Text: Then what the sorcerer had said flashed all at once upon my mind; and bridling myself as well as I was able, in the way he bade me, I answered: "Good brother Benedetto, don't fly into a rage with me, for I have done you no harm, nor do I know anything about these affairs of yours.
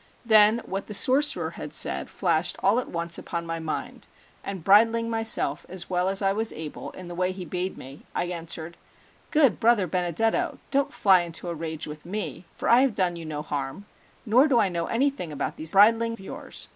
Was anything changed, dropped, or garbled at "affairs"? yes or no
yes